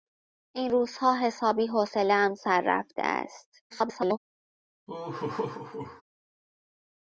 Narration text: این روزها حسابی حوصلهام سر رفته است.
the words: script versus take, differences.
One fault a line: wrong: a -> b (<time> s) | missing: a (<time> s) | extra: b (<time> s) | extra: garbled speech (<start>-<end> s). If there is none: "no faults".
extra: garbled speech (3.7-4.2 s)